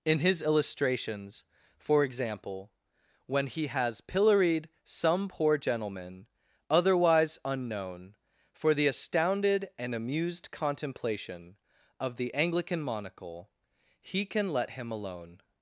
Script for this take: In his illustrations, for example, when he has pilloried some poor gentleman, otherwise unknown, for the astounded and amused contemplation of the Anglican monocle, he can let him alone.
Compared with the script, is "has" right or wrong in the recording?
right